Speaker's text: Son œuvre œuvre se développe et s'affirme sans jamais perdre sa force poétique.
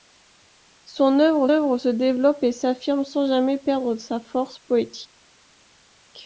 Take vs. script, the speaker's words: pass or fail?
pass